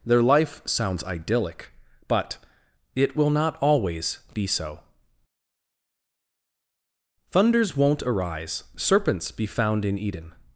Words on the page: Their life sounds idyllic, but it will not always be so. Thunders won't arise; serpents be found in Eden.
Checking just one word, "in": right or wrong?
right